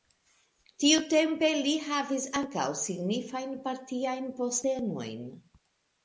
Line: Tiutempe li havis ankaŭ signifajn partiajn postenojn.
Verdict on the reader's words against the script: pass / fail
pass